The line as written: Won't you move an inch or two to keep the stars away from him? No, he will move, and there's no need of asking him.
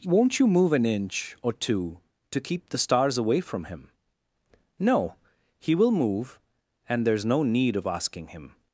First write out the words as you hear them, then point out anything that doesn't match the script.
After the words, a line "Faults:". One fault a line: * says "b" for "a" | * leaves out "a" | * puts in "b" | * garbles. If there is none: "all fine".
Won't you move an inch or two to keep the stars away from him? No, he will move, and there's no need of asking him.
Faults:
all fine